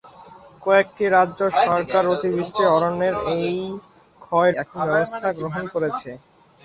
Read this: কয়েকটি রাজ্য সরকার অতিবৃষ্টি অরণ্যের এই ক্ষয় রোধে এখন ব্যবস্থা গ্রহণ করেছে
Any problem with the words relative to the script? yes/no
yes